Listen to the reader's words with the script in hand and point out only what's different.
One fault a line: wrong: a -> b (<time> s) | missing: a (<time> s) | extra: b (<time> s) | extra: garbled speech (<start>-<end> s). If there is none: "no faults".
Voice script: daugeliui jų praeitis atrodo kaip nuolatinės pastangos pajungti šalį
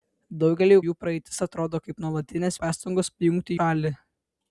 no faults